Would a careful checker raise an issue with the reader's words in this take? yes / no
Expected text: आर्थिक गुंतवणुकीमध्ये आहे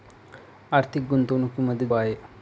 no